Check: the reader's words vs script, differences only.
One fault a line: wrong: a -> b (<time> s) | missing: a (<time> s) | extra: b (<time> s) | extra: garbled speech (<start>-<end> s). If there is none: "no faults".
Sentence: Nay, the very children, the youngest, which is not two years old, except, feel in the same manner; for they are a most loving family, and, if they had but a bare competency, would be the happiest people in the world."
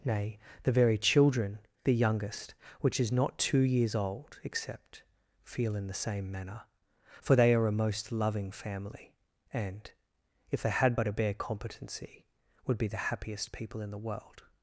no faults